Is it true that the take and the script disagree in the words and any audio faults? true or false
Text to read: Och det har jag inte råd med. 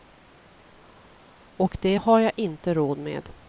false